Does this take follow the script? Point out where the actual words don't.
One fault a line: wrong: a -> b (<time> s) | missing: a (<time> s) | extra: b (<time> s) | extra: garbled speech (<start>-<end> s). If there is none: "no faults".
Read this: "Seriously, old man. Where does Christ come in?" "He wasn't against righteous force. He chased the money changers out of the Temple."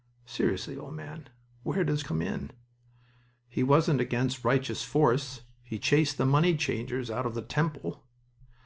missing: Christ (2.0 s)